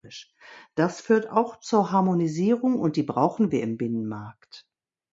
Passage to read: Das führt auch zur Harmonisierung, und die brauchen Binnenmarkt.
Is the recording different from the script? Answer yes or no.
yes